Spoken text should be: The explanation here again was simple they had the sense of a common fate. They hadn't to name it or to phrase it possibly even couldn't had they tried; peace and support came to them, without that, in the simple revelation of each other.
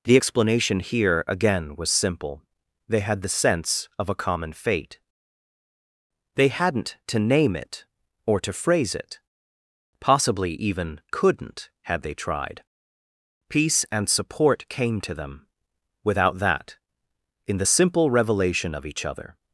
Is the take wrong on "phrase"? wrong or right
right